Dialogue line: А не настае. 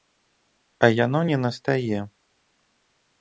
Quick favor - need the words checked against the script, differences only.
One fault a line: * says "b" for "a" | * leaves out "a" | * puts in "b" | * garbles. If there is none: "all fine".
* puts in "яно"